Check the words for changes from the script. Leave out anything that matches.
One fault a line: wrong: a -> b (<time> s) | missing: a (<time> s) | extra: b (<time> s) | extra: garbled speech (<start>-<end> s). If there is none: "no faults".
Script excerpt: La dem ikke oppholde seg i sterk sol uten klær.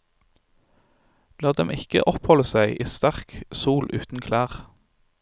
no faults